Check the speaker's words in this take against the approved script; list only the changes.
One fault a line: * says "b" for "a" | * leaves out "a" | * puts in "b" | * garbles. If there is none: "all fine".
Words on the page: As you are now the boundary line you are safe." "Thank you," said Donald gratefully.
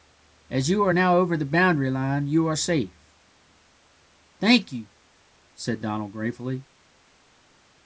* puts in "over"